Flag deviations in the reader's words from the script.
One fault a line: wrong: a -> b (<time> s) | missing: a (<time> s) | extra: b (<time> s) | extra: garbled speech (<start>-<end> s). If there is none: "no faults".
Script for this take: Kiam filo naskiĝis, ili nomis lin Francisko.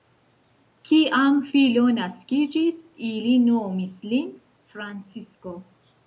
no faults